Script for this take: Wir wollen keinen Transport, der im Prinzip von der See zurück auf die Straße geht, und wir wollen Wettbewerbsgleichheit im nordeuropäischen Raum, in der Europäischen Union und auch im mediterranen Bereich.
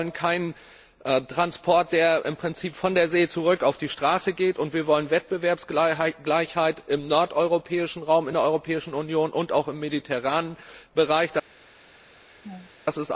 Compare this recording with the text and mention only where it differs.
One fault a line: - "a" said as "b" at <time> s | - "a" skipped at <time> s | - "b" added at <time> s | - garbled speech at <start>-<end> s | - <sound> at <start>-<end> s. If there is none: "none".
- laugh at 12.4-12.7 s